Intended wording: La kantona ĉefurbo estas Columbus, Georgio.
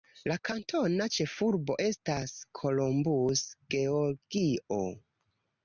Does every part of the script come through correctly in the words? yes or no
yes